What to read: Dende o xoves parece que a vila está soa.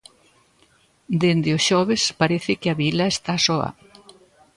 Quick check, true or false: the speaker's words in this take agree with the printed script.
true